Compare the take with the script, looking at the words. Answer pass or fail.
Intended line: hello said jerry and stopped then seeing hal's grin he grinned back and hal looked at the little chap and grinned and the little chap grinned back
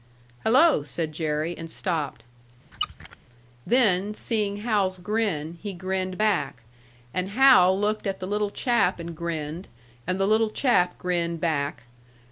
pass